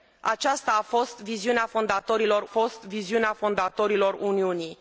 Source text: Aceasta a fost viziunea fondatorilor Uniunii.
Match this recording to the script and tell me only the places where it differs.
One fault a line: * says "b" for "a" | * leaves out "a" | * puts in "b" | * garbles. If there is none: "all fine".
* puts in "fost viziunea fondatorilor"